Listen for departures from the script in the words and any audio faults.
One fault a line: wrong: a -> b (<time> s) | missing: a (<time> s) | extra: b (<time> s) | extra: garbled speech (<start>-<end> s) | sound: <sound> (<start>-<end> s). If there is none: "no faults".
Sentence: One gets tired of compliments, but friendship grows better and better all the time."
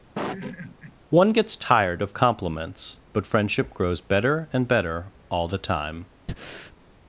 sound: laugh (0.1-0.9 s)
sound: breath (6.3-6.8 s)